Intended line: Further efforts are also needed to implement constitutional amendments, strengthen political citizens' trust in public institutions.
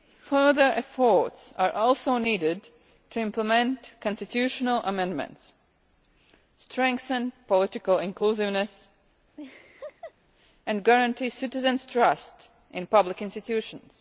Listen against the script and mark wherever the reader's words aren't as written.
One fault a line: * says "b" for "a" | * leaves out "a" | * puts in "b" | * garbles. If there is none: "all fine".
* puts in "inclusiveness and guarantee"